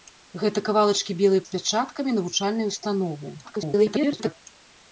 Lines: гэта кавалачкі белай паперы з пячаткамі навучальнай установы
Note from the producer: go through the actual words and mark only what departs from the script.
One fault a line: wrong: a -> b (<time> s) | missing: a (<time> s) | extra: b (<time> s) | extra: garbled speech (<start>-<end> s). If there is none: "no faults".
missing: паперы (1.4 s)
extra: garbled speech (3.4-4.4 s)